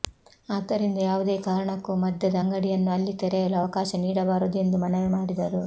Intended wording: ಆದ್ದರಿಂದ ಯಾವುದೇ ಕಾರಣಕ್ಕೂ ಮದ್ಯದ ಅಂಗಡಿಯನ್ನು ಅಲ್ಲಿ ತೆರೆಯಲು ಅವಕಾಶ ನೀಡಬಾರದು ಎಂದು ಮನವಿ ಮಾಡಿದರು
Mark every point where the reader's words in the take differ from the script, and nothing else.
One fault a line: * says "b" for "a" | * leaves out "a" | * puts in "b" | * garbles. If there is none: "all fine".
all fine